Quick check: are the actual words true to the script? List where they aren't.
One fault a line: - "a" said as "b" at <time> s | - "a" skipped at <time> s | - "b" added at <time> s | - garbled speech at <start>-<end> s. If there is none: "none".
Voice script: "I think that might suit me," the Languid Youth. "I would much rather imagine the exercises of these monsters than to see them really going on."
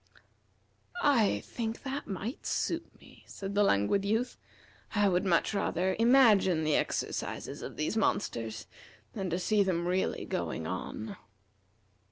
- "said" added at 3.3 s